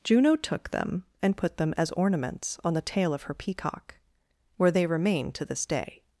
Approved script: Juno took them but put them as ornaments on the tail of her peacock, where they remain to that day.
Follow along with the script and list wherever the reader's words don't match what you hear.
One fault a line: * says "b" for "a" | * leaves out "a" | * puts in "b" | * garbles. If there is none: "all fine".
* says "and" for "but"
* says "this" for "that"